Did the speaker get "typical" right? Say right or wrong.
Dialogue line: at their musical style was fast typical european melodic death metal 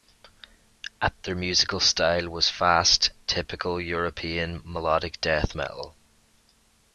right